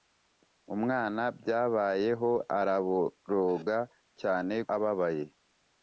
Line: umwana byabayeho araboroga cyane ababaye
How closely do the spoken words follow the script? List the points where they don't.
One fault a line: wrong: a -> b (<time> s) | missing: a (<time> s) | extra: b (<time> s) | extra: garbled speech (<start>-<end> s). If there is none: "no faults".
no faults